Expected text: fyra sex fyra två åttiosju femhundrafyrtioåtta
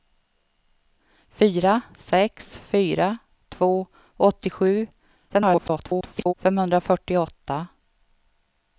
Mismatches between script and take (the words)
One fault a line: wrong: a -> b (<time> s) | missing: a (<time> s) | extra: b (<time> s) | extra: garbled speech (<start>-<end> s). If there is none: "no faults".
extra: garbled speech (5.3-6.3 s)